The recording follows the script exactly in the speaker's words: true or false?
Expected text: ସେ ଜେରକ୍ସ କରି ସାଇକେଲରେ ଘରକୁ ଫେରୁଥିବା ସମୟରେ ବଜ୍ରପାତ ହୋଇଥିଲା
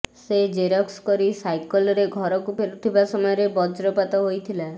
true